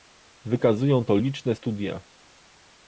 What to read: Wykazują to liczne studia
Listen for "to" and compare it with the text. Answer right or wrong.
right